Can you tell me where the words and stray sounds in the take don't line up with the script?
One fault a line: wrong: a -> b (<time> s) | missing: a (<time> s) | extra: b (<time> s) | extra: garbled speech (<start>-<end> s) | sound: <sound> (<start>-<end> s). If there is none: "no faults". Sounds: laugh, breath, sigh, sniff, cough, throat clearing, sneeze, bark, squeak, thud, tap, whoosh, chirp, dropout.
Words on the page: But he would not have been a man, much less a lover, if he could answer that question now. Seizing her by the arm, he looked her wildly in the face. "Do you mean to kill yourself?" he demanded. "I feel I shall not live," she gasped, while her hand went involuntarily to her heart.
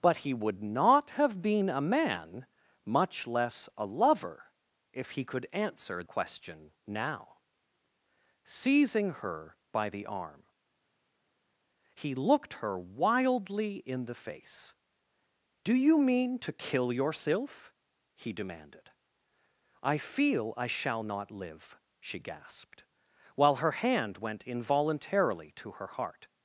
missing: that (6.0 s)